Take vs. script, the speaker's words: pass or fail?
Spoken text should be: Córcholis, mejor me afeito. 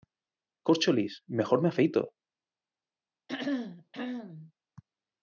pass